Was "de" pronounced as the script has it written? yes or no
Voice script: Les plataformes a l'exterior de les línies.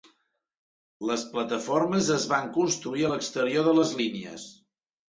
yes